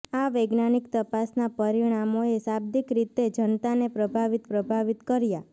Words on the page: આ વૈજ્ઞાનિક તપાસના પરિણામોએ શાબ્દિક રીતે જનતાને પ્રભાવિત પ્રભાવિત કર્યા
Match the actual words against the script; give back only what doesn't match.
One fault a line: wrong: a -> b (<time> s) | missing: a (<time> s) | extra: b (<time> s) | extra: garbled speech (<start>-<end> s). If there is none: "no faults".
no faults